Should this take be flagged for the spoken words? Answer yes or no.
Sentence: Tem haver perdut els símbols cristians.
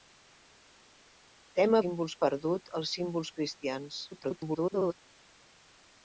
yes